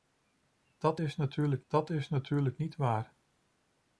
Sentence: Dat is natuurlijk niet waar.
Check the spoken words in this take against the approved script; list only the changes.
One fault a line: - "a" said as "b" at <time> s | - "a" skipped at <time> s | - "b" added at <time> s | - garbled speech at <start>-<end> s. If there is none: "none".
- "dat is natuurlijk" added at 1.7 s